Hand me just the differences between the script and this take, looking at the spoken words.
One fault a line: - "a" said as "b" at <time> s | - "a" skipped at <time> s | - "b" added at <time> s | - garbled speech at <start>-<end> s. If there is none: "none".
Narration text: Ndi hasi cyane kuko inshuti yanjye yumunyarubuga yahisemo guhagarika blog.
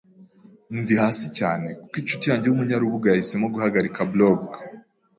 none